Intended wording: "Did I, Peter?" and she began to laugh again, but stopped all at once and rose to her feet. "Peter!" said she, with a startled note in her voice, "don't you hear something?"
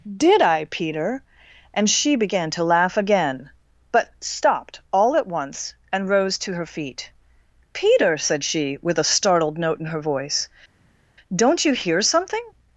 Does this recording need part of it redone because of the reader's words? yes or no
no